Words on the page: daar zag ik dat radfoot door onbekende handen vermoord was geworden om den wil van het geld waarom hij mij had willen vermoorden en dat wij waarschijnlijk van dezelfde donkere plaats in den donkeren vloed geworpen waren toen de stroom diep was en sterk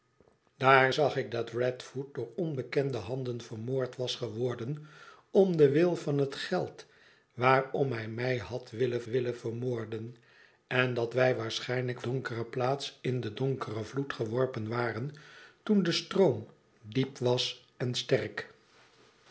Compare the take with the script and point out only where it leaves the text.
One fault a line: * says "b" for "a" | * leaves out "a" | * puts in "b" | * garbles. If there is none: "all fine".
* puts in "willen"
* leaves out "van dezelfde"